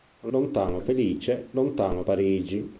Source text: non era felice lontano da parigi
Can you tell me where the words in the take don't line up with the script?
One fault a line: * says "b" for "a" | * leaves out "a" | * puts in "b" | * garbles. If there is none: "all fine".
* says "lontano" for "era"
* leaves out "da"